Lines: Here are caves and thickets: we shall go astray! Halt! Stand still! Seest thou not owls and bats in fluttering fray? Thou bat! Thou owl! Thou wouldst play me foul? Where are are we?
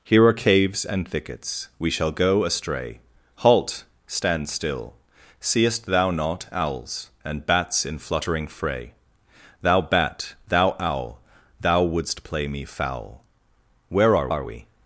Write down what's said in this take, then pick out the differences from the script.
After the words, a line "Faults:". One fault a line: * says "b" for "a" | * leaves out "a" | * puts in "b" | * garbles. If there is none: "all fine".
Here are caves and thickets: we shall go astray! Halt! Stand still! Seest thou not owls and bats in fluttering fray? Thou bat! Thou owl! Thou wouldst play me foul? Where are are we?
Faults:
all fine